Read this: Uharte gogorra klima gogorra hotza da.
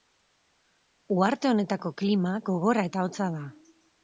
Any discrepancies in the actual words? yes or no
yes